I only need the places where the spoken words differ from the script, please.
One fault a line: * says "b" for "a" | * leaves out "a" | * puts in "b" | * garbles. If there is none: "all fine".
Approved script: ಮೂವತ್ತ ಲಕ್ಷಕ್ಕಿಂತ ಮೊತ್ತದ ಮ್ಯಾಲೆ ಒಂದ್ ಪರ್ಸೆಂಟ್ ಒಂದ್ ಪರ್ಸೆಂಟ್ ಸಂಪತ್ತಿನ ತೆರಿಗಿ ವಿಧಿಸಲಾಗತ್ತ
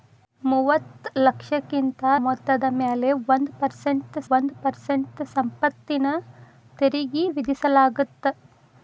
all fine